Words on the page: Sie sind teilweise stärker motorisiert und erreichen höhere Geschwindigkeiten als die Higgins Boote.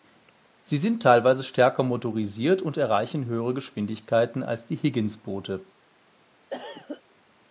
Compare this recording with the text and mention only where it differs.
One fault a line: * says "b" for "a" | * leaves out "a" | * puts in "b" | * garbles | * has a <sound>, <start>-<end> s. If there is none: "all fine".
* has a cough, 6.5-7.0 s